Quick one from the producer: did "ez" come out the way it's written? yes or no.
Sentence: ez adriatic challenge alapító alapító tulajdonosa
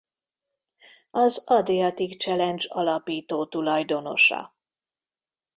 no